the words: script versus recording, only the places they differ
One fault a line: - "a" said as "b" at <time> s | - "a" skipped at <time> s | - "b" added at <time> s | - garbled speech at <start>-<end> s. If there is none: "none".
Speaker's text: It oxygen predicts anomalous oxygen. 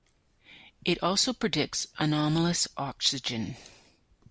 - "oxygen" said as "also" at 1.0 s